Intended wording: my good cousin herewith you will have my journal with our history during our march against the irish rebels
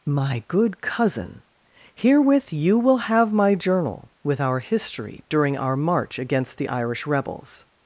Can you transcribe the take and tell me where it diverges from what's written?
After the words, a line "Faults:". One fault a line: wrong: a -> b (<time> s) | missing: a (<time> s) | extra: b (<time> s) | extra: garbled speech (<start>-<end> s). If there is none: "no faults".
my good cousin herewith you will have my journal with our history during our march against the irish rebels
Faults:
no faults